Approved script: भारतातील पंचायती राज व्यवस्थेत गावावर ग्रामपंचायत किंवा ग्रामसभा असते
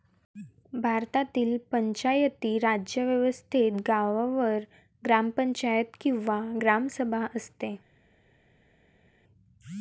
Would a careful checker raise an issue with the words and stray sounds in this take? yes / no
no